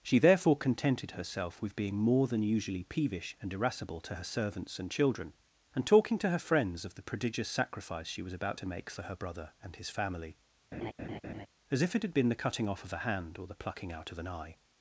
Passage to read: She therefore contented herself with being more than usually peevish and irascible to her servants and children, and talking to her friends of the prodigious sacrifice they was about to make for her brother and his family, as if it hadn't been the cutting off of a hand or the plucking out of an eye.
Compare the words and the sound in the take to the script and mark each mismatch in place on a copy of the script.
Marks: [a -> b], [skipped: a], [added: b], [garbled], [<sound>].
She therefore contented herself with being more than usually peevish and irascible to her servants and children, and talking to her friends of the prodigious sacrifice [they -> she] was about to make for her brother and his family, [laugh] as if it [hadn't -> had] been the cutting off of a hand or the plucking out of an eye.